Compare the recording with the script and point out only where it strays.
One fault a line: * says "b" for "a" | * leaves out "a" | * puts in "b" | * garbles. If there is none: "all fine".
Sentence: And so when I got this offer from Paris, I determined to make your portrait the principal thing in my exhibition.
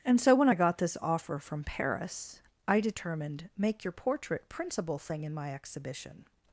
* leaves out "to"
* leaves out "the"